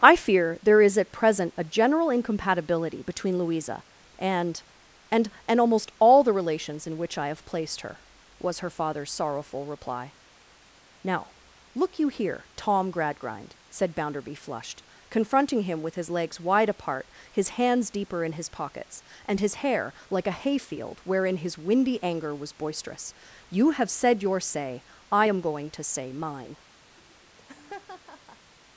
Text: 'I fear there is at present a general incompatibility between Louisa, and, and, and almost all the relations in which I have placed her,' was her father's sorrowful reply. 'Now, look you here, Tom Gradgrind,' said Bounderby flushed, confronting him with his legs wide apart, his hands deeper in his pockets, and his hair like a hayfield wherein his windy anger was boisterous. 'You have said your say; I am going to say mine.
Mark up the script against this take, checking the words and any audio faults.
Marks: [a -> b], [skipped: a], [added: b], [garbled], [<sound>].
'I fear there is at present a general incompatibility between Louisa, and, and, and almost all the relations in which I have placed her,' was her father's sorrowful reply. 'Now, look you here, Tom Gradgrind,' said Bounderby flushed, confronting him with his legs wide apart, his hands deeper in his pockets, and his hair like a hayfield wherein his windy anger was boisterous. 'You have said your say; I am going to say mine. [laugh]